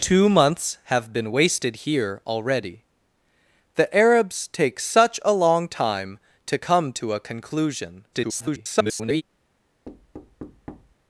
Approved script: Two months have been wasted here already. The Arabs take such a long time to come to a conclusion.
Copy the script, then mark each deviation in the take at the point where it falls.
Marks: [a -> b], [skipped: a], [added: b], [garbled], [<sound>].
Two months have been wasted here already. The Arabs take such a long time to come to a conclusion. [garbled] [thud]